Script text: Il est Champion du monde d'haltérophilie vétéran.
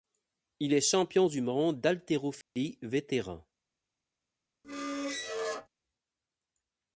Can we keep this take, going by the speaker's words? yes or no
yes